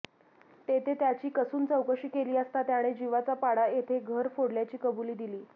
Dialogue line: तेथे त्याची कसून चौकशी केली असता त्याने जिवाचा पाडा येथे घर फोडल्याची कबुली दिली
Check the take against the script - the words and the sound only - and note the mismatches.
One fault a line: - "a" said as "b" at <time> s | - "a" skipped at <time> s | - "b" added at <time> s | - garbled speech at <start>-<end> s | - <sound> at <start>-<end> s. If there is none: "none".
none